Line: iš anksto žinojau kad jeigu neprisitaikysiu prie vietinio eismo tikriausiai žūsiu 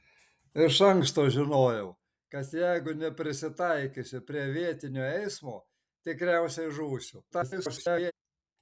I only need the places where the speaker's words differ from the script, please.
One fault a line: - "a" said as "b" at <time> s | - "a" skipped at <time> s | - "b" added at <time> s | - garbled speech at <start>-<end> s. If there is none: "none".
- garbled speech at 7.3-8.1 s